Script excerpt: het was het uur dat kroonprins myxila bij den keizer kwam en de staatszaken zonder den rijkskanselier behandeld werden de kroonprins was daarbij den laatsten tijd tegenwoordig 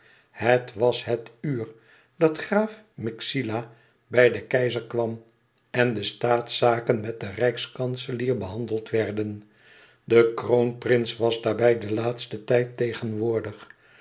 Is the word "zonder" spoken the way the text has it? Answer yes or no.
no